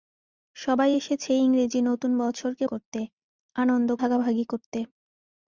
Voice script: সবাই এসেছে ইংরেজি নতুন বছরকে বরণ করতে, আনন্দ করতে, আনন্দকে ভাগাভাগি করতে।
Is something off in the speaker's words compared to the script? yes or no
yes